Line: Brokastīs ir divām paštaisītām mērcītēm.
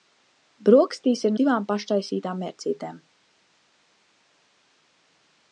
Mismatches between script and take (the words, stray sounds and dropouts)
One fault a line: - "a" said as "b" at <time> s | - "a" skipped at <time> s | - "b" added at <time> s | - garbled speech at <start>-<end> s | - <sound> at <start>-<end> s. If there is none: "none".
none